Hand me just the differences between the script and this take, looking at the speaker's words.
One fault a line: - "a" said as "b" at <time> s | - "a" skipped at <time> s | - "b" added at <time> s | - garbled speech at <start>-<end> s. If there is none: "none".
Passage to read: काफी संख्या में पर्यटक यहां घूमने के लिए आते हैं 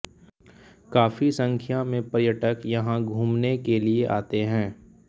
none